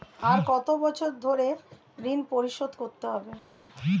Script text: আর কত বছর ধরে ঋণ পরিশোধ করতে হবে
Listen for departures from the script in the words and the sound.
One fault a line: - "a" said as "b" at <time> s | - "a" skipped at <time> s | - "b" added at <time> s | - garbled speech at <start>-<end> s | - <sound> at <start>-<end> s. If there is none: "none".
none